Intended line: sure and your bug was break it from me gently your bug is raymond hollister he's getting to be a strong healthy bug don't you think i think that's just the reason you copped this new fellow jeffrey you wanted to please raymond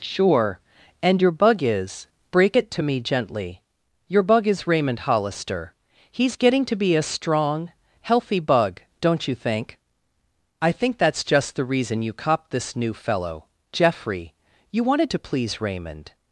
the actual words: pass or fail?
fail